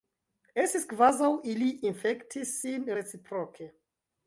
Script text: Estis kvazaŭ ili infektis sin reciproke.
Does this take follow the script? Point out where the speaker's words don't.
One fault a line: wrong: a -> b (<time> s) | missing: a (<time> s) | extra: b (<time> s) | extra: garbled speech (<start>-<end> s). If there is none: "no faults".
no faults